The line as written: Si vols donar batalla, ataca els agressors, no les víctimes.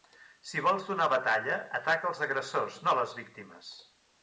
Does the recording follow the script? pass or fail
pass